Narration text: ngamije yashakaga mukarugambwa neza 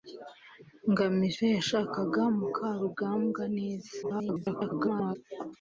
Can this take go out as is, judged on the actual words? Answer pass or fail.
fail